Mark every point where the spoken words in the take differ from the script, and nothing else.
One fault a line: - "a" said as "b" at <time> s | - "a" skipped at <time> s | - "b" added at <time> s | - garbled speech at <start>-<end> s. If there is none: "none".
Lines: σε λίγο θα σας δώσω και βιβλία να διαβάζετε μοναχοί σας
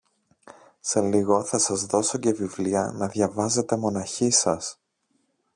none